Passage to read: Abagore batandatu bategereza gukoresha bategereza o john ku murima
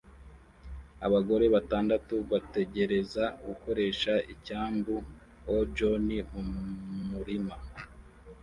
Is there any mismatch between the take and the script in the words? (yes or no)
yes